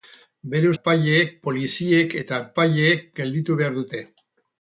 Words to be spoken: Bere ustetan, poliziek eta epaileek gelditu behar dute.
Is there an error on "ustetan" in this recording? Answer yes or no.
yes